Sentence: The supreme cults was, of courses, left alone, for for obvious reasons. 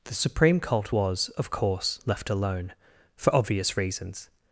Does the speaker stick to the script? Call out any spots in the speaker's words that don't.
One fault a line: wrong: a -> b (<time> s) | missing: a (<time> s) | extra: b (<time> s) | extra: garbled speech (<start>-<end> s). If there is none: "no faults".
wrong: cults -> cult (0.6 s)
wrong: courses -> course (1.5 s)
missing: for (3.3 s)